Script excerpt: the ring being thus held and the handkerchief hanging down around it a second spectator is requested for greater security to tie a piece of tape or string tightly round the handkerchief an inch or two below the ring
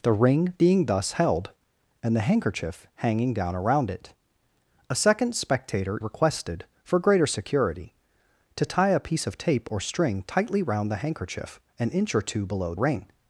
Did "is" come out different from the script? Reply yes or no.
yes